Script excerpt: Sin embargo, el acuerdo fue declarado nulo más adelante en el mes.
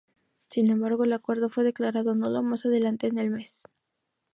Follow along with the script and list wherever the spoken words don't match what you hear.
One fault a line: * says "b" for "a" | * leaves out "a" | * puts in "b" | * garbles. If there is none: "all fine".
all fine